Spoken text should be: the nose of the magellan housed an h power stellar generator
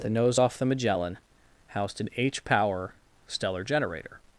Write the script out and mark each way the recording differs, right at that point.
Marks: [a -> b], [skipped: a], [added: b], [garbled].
the nose [of -> off] the magellan housed an h power stellar generator